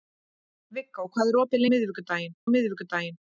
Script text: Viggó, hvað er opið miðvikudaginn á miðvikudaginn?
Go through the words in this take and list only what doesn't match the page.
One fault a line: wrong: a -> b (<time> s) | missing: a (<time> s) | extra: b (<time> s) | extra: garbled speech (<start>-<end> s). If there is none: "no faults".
no faults